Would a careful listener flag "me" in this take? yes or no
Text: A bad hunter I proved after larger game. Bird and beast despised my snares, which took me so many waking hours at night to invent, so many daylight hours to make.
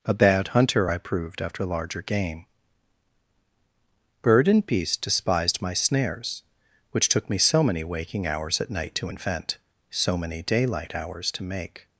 no